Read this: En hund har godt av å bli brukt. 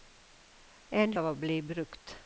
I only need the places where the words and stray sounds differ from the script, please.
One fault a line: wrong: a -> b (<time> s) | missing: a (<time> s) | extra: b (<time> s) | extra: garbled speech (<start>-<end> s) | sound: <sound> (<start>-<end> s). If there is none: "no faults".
missing: hund har godt (1.1 s)